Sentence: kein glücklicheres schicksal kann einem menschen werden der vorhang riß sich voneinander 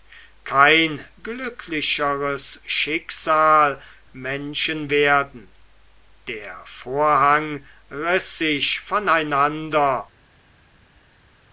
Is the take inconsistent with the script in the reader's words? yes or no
yes